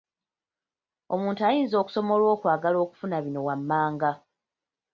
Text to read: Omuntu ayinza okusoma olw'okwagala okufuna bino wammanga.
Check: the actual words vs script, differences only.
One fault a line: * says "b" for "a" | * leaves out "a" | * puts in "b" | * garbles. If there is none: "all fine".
all fine